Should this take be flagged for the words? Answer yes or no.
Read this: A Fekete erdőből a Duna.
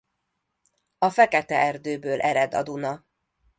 yes